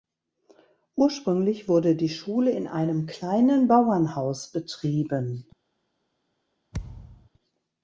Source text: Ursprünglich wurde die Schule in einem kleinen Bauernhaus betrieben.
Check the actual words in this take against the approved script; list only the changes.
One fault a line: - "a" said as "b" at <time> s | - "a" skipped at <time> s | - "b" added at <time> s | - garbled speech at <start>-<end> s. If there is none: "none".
none